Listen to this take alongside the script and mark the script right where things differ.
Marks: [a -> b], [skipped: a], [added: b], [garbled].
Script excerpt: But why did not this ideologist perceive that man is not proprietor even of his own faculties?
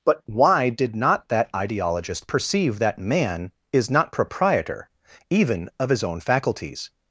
But why did not [this -> that] ideologist perceive that man is not proprietor even of his own faculties?